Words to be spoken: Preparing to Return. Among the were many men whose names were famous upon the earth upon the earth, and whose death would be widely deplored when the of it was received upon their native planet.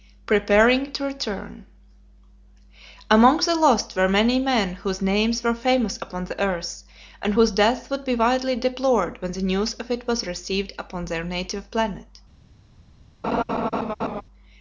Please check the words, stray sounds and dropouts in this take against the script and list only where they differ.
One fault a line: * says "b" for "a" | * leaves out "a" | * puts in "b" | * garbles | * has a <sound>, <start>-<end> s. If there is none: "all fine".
* puts in "lost"
* leaves out "upon the earth"
* puts in "news"
* has a laugh, 13.2-14.2 s